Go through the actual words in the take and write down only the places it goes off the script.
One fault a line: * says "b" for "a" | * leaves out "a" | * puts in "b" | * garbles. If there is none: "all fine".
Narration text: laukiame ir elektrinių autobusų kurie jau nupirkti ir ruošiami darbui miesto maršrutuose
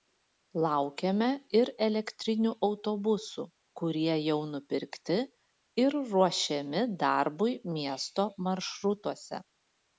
all fine